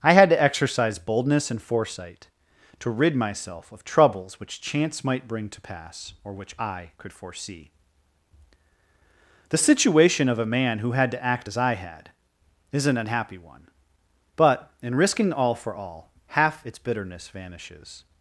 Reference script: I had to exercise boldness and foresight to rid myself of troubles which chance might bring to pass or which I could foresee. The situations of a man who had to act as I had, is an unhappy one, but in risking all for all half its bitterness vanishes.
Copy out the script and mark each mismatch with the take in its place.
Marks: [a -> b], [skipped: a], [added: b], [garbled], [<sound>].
I had to exercise boldness and foresight to rid myself of troubles which chance might bring to pass or which I could foresee. The [situations -> situation] of a man who had to act as I had, is an unhappy one, but in risking all for all half its bitterness vanishes.